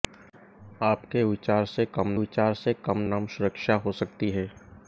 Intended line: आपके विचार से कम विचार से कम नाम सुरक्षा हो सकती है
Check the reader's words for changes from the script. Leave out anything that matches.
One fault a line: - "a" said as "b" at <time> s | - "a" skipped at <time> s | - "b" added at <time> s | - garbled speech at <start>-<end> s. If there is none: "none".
none